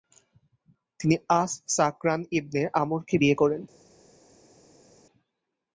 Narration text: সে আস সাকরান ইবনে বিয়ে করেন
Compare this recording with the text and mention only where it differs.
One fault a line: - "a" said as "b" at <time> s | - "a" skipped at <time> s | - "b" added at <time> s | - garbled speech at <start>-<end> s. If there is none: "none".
- "সে" said as "তিনি" at 1.0 s
- "আমরকে" added at 2.8 s